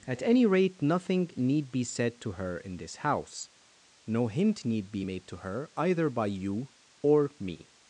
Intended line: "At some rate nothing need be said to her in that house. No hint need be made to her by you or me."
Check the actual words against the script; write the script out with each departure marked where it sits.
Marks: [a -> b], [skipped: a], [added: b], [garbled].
"At [some -> any] rate nothing need be said to her in [that -> this] house. No hint need be made to her [added: either] by you or me."